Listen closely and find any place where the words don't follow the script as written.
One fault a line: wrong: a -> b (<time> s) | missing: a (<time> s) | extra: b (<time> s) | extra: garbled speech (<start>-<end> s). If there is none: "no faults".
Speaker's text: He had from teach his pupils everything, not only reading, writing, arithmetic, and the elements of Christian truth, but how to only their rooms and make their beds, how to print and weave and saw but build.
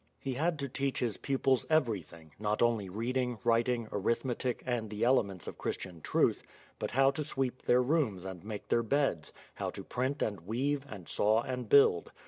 wrong: from -> to (0.6 s)
wrong: only -> sweep (7.2 s)
wrong: but -> and (11.4 s)